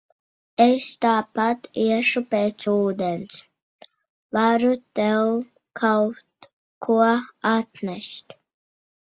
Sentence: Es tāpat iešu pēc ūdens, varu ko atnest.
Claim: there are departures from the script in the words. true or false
true